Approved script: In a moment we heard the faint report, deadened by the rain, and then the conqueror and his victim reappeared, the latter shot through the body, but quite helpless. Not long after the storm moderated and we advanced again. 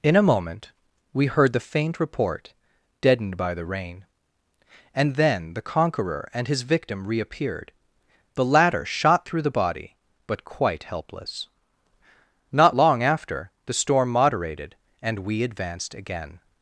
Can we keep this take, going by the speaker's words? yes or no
yes